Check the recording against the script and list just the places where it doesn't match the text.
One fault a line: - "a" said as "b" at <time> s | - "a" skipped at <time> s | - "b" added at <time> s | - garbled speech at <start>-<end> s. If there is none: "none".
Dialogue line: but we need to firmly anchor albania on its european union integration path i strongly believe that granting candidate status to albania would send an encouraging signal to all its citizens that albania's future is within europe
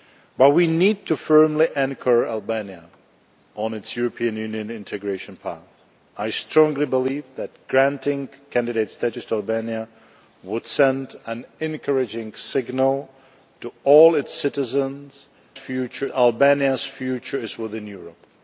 - "that" said as "future" at 15.5 s